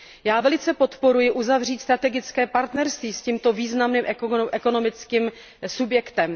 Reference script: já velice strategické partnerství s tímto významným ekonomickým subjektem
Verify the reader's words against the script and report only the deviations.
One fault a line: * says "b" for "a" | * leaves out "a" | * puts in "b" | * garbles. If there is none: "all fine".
* puts in "podporuji uzavřít"